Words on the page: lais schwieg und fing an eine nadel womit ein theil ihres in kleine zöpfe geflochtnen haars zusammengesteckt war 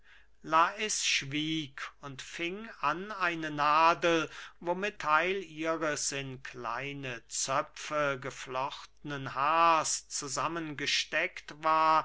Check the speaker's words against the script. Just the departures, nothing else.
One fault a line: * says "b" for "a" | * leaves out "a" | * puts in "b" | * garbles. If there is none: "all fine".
* leaves out "ein"